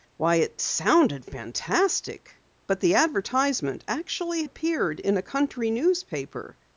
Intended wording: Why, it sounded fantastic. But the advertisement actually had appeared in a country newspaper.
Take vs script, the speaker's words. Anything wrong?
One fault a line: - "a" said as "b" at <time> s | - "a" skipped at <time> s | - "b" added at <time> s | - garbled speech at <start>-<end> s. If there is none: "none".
- "had" skipped at 4.5 s